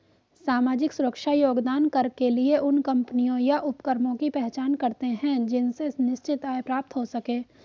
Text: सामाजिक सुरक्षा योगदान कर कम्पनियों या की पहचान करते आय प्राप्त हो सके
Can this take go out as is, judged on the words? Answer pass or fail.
fail